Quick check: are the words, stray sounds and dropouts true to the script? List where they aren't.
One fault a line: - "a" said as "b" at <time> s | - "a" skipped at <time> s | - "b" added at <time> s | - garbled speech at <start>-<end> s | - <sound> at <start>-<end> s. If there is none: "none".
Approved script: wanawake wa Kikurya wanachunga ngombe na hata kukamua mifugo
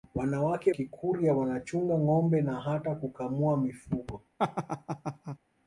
- "wa" skipped at 0.7 s
- laugh at 4.4-5.4 s